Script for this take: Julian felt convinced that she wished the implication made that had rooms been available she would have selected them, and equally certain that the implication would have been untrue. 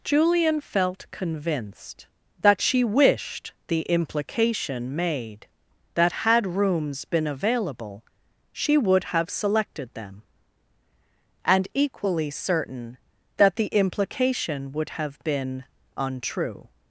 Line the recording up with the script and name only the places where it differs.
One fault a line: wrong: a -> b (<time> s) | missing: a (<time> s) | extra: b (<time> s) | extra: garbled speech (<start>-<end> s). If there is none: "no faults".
no faults